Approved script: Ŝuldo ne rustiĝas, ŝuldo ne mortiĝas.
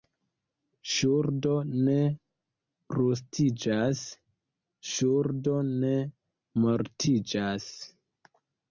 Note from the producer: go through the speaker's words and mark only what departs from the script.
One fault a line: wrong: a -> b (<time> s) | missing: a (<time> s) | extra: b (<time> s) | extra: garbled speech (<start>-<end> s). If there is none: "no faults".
no faults